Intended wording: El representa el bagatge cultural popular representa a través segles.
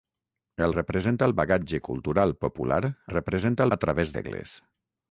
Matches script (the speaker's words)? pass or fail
pass